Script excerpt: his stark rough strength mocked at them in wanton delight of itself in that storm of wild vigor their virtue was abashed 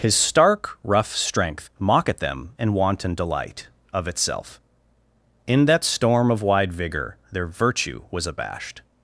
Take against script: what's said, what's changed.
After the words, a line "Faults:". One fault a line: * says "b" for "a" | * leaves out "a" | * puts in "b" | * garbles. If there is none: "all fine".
his stark rough strength mock at them in wanton delight of itself in that storm of wide vigor their virtue was abashed
Faults:
* says "mock" for "mocked"
* says "wide" for "wild"